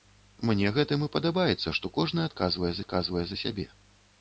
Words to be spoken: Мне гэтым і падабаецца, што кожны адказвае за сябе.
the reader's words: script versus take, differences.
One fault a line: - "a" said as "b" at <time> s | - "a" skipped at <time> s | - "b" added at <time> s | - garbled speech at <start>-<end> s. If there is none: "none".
- "адказвае" added at 2.8 s